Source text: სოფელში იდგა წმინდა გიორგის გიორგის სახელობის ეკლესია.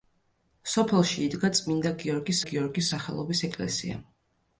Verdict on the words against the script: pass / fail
pass